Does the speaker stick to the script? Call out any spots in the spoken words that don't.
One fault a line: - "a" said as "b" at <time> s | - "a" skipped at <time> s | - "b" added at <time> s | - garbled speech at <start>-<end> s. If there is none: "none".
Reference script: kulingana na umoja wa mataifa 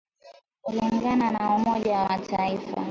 none